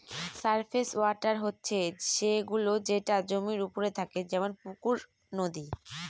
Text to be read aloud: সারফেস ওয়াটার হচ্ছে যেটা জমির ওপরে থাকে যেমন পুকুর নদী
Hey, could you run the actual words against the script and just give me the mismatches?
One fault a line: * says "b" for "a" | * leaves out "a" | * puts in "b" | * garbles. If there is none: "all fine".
* puts in "সে গুলো"